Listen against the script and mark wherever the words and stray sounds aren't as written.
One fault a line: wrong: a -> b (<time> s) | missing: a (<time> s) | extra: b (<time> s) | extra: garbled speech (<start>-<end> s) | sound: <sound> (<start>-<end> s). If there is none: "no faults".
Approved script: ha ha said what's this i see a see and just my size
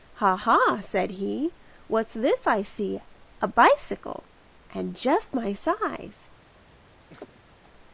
extra: he (1.1 s)
wrong: see -> bicycle (3.5 s)
sound: laugh (7.1-7.7 s)